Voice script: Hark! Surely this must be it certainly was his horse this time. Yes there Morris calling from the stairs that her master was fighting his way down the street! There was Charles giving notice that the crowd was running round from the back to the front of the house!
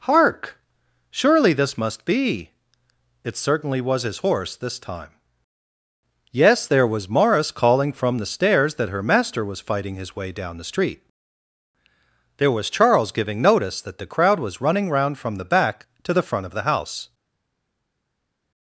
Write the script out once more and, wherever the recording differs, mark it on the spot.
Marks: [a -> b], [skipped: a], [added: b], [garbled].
Hark! Surely this must be it certainly was his horse this time. Yes there [added: was] Morris calling from the stairs that her master was fighting his way down the street! There was Charles giving notice that the crowd was running round from the back to the front of the house!